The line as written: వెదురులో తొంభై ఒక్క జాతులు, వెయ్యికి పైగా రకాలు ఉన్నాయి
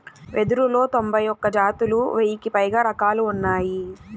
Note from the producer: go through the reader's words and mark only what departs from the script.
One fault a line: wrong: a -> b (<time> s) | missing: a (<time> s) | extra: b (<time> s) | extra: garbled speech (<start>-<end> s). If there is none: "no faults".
no faults